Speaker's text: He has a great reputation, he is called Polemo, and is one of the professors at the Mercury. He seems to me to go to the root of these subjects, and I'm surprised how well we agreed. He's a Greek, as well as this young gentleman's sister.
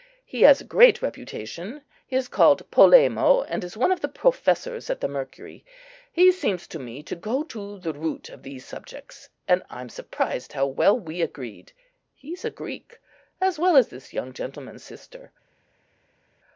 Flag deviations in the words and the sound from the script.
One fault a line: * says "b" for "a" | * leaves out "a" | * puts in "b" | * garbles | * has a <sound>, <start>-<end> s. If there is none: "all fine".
all fine